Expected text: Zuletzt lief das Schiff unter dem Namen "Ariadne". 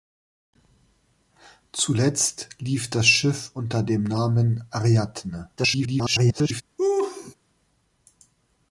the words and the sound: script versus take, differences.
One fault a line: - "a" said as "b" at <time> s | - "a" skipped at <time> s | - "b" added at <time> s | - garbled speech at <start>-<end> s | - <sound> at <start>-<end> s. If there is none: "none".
- garbled speech at 5.6-6.6 s
- laugh at 6.8-7.3 s